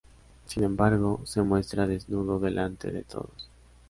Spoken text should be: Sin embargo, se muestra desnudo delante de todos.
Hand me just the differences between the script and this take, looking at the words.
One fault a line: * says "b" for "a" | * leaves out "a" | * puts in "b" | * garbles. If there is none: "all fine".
all fine